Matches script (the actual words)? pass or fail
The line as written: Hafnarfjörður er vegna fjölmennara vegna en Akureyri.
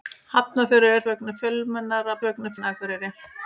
pass